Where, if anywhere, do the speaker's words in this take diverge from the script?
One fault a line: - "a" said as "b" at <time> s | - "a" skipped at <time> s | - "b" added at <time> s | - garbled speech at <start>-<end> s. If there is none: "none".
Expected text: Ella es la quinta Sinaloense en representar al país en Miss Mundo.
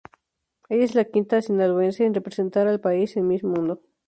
- "es" added at 0.9 s